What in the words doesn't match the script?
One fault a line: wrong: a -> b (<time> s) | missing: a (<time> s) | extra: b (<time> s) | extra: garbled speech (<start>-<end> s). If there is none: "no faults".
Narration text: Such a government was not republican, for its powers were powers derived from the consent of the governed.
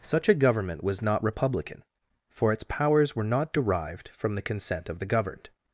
wrong: powers -> not (3.2 s)